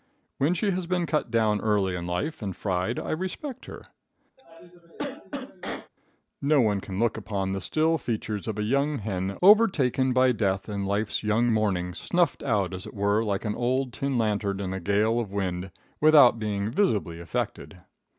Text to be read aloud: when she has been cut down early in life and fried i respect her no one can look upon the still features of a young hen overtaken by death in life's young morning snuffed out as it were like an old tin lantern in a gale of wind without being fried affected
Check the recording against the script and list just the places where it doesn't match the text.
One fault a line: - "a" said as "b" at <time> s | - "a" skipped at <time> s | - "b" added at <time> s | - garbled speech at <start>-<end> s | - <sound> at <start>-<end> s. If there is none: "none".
- cough at 4.4-5.9 s
- "fried" said as "visibly" at 16.7 s